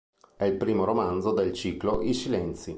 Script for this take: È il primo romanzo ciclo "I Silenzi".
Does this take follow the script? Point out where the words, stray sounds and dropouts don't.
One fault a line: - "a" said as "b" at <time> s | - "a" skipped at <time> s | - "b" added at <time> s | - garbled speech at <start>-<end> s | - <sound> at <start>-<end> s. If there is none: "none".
- "del" added at 1.3 s